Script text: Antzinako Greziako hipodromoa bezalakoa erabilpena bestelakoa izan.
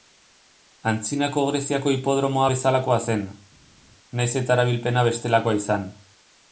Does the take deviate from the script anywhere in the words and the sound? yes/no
yes